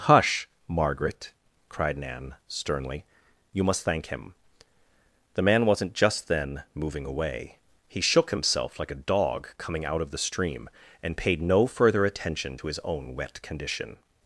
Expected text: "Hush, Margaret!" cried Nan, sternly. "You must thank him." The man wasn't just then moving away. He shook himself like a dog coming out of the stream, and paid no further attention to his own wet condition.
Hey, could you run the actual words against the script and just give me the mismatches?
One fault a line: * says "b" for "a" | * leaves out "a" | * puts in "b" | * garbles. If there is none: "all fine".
all fine